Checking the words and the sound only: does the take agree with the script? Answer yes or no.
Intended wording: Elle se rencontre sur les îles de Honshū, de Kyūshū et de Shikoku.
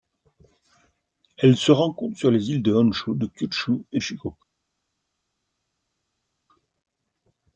no